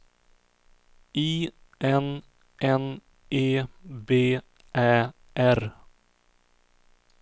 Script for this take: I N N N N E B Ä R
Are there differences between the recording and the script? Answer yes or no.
yes